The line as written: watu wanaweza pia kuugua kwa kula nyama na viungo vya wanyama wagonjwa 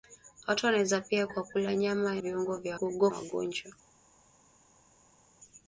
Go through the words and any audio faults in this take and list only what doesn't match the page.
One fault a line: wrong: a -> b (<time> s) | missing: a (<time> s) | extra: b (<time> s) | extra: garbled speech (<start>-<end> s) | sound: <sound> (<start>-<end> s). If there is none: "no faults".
missing: kuugua (1.3 s)
missing: na (2.2 s)
wrong: wanyama -> kuugua (2.7 s)